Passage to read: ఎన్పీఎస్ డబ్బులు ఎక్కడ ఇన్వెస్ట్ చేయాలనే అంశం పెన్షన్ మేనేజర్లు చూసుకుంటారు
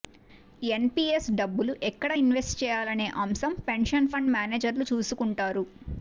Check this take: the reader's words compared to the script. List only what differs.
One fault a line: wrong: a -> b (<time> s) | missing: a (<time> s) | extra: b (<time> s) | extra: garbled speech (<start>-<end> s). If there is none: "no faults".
extra: ఫండ్ (4.1 s)